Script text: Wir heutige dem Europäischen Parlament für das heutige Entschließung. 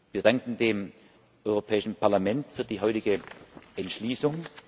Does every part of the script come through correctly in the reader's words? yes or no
no